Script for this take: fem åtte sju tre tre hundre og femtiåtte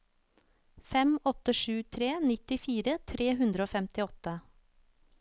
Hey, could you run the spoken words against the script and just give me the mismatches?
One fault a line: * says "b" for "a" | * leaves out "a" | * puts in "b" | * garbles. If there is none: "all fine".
* puts in "nittifire"